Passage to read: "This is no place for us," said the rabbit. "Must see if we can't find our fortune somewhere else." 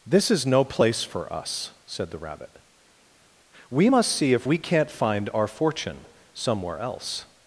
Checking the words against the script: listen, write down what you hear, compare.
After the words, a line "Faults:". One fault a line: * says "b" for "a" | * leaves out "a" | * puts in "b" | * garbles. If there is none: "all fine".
"This is no place for us," said the rabbit. "We must see if we can't find our fortune somewhere else."
Faults:
* puts in "We"